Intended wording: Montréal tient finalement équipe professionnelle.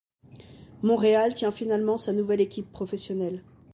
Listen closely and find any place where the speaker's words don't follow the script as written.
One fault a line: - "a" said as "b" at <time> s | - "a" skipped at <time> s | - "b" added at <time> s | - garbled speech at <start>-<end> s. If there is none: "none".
- "sa nouvelle" added at 2.0 s